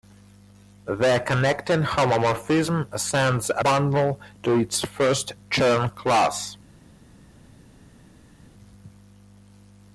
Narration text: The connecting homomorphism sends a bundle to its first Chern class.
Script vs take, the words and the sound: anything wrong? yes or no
no